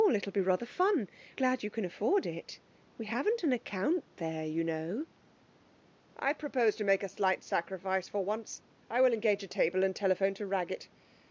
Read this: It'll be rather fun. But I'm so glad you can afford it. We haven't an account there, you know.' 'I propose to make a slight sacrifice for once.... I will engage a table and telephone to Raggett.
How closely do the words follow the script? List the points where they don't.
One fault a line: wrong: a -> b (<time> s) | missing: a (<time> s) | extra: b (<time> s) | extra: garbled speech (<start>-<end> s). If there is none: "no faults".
missing: But I'm so (1.1 s)